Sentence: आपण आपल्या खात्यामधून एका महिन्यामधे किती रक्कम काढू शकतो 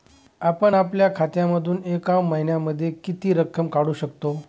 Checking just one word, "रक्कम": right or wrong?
right